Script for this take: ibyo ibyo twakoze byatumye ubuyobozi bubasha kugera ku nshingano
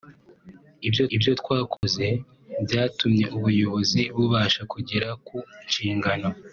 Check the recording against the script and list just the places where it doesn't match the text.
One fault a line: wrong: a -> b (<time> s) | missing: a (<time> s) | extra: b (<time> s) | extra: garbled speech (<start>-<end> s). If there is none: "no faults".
no faults